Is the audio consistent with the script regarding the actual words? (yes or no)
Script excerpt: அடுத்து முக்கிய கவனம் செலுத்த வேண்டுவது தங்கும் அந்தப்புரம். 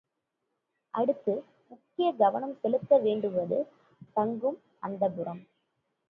yes